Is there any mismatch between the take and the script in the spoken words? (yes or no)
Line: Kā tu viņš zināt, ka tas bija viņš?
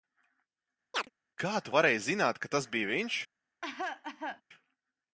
yes